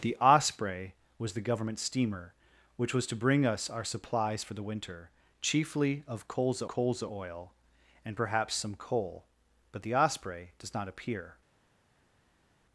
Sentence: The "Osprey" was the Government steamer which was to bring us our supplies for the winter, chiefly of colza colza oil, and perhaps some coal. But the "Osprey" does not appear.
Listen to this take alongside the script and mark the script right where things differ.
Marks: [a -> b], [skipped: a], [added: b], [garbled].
The "Osprey" was the Government steamer which was to bring us our supplies for the winter, chiefly of colza colza oil, and perhaps some coal. But the "Osprey" does not appear.